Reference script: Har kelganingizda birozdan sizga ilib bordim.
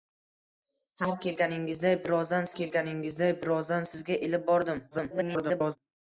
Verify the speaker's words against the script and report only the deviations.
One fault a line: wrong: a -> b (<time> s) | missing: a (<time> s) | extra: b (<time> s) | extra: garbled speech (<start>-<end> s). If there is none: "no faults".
extra: kelganingizda birozdan (2.6 s)
extra: garbled speech (4.9-5.8 s)